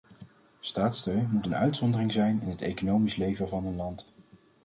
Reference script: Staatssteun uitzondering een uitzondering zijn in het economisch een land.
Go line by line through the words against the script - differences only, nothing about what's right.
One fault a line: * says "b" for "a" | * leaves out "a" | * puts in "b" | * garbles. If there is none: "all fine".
* says "moet" for "uitzondering"
* puts in "leven van"